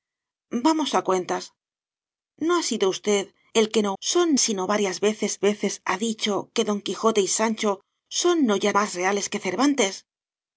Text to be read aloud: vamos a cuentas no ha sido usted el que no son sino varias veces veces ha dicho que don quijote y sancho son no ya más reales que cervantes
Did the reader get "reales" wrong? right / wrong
right